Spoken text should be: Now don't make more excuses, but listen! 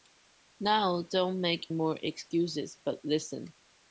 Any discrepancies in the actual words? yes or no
no